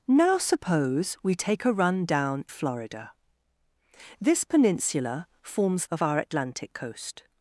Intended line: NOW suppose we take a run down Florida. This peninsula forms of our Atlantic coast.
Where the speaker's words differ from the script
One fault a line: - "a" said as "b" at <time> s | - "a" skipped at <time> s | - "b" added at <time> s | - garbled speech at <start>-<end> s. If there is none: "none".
none